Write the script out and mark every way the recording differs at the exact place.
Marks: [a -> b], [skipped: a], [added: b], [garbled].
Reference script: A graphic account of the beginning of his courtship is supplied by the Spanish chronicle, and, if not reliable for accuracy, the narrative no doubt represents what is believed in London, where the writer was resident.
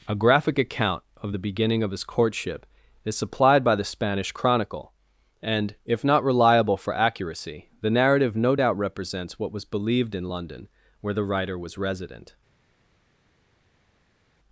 A graphic account of the beginning of his courtship is supplied by the Spanish chronicle, and, if not reliable for accuracy, the narrative no doubt represents what [is -> was] believed in London, where the writer was resident.